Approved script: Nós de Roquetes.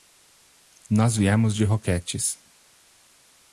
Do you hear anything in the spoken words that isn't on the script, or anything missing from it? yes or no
yes